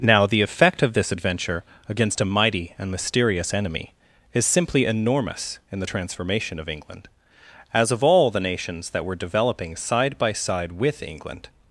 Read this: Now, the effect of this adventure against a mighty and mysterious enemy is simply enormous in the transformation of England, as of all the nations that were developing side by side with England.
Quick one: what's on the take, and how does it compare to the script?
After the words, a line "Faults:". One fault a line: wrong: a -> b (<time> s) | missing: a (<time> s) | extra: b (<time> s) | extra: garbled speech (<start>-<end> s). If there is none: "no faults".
Now, the effect of this adventure against a mighty and mysterious enemy is simply enormous in the transformation of England, as of all the nations that were developing side by side with England.
Faults:
no faults